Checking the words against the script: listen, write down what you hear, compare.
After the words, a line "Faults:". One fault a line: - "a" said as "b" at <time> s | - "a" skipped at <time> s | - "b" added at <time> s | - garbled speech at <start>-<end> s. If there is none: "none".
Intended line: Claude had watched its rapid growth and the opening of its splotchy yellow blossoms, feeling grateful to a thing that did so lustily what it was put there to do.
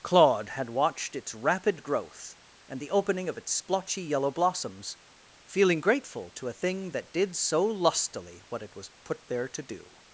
Claude had watched its rapid growth and the opening of its splotchy yellow blossoms, feeling grateful to a thing that did so lustily what it was put there to do.
Faults:
none